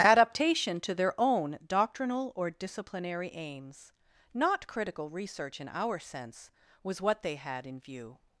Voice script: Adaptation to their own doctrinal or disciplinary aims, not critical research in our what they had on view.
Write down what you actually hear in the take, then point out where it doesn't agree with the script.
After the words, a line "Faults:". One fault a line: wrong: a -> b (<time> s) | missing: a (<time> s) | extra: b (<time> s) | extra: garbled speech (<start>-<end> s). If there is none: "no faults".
Adaptation to their own doctrinal or disciplinary aims, not critical research in our sense, was what they had in view.
Faults:
extra: sense was (6.0 s)
wrong: on -> in (7.7 s)